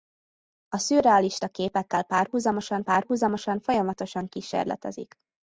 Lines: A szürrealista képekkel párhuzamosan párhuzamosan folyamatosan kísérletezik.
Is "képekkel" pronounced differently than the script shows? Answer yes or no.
no